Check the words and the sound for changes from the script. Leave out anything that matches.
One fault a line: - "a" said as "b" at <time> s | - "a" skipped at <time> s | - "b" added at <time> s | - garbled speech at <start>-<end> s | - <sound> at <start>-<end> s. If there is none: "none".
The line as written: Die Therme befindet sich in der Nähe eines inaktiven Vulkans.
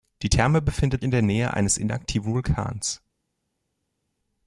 - "sich" skipped at 1.0 s